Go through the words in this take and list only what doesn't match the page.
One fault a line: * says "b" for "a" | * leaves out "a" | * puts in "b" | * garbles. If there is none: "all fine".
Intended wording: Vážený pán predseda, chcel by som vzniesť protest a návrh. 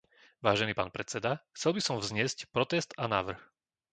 all fine